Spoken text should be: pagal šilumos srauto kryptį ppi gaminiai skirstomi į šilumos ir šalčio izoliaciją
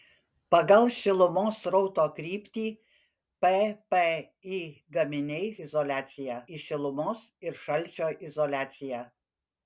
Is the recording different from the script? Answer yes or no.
yes